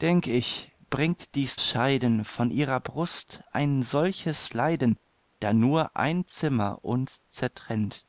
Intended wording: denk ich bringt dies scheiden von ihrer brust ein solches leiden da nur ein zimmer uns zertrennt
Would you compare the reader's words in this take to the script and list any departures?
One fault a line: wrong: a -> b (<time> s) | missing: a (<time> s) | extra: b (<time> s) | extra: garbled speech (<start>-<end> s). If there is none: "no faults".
no faults